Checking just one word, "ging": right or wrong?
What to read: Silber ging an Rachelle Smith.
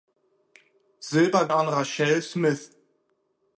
wrong